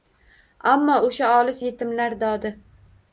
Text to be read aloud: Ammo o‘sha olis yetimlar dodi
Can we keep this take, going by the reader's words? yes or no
yes